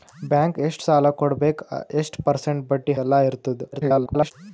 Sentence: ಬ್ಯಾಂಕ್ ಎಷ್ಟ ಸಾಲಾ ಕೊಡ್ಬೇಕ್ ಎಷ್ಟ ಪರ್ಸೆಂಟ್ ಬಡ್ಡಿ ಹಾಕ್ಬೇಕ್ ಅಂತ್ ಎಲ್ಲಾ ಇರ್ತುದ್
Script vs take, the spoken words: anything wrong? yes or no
yes